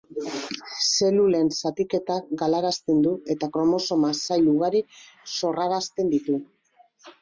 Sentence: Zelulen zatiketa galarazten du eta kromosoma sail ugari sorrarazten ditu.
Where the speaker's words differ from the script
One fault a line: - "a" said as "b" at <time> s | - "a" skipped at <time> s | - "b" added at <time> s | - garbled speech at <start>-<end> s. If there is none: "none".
none